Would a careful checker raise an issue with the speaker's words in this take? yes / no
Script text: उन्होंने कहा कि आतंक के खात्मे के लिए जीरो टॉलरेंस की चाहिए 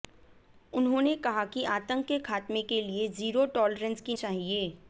no